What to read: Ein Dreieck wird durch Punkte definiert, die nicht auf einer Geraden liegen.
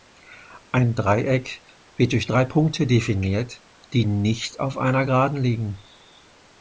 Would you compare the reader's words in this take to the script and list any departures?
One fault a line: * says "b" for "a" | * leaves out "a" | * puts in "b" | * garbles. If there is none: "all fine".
* puts in "drei"